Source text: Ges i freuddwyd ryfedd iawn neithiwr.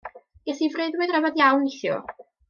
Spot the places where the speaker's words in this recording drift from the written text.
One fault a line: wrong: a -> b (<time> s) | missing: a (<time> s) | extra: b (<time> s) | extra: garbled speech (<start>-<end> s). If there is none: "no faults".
no faults